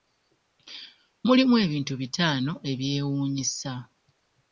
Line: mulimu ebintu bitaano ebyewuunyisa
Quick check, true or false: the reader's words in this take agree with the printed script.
true